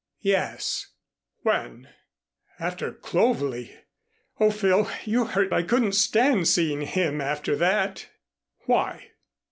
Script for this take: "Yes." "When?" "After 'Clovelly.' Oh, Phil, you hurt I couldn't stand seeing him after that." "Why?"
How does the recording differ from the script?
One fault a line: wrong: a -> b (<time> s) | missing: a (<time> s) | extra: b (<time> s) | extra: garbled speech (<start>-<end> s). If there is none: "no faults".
no faults